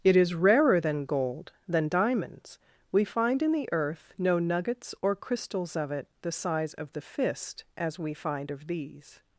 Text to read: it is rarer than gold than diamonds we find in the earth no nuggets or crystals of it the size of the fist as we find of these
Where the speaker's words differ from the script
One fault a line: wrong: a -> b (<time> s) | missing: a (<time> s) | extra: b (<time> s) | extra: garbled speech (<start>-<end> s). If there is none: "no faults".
no faults